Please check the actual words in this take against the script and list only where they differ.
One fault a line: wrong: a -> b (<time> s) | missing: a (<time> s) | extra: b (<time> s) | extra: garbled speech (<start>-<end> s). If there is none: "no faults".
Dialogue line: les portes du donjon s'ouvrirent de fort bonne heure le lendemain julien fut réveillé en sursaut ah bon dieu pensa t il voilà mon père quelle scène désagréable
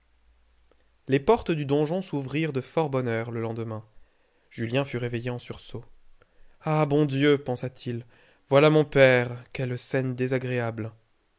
no faults